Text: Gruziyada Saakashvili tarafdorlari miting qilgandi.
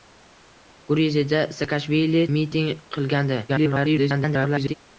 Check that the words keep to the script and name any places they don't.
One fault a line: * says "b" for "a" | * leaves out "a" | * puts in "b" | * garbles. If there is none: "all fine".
* leaves out "tarafdorlari"
* garbles